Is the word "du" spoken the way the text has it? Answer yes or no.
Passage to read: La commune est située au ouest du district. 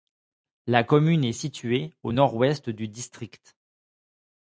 yes